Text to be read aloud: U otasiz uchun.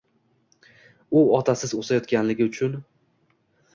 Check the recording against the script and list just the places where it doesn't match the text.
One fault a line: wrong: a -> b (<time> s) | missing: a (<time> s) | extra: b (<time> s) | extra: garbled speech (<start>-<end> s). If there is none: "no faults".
extra: o‘sayotganligi (1.8 s)